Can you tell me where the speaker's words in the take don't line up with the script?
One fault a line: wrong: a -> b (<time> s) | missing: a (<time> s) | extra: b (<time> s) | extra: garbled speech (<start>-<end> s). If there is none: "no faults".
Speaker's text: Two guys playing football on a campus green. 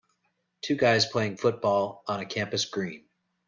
no faults